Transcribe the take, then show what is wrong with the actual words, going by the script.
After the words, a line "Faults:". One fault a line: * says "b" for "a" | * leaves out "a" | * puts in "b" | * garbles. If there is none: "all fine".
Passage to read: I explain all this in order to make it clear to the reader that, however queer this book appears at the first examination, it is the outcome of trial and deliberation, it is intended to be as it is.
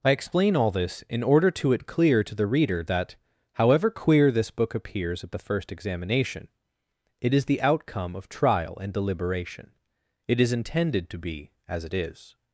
I explain all this in order to it clear to the reader that, however queer this book appears at the first examination, it is the outcome of trial and deliberation, it is intended to be as it is.
Faults:
* leaves out "make"